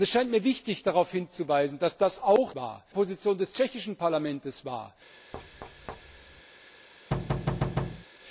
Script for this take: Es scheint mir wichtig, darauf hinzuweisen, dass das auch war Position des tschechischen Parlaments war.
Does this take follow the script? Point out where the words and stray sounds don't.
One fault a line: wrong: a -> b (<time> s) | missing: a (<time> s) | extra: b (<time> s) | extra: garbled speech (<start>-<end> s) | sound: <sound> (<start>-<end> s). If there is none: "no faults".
sound: thud (5.3-6.4 s)
sound: thud (7.1-8.1 s)